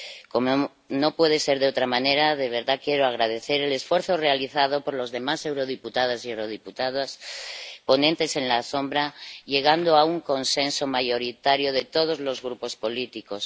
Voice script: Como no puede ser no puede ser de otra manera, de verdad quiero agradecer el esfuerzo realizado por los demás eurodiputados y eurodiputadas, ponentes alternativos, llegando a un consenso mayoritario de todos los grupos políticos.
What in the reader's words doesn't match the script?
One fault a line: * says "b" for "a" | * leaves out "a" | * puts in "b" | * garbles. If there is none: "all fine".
* leaves out "no puede ser"